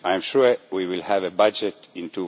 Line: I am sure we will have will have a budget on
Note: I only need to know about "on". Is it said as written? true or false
false